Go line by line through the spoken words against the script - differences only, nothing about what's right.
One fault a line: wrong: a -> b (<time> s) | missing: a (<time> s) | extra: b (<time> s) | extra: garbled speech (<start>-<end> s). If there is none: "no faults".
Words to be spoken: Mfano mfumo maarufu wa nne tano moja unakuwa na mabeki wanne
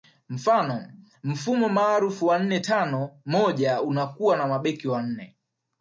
no faults